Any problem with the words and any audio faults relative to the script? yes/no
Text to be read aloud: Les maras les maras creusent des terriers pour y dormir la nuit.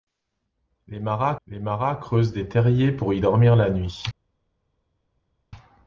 no